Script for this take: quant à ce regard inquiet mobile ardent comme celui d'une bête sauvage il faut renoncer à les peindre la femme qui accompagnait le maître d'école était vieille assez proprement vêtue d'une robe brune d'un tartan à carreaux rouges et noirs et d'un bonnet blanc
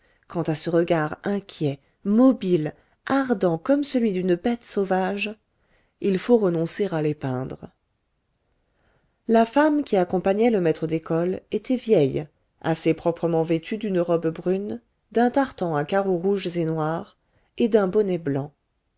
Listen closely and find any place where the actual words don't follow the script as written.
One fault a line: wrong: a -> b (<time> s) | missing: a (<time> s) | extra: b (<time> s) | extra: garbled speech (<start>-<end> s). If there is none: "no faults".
no faults